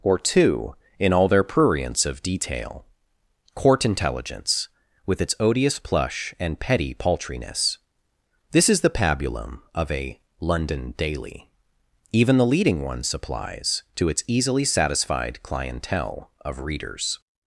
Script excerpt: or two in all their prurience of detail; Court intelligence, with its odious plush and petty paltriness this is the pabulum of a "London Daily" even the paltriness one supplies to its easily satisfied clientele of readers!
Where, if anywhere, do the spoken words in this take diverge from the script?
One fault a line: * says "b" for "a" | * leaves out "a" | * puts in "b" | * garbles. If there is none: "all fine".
* says "leading" for "paltriness"